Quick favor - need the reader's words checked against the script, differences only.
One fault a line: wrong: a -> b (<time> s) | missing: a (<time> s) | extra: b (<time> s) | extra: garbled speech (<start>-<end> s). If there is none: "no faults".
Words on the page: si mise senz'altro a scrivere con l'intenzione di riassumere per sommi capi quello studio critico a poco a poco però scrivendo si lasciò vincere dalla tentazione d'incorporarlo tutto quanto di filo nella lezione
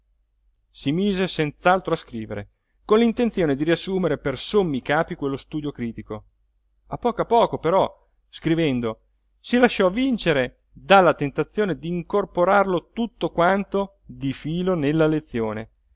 no faults